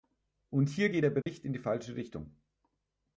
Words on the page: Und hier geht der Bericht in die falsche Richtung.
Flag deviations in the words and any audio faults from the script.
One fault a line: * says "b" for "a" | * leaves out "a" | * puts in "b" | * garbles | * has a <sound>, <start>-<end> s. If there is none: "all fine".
* has a dropout, 1.2-1.3 s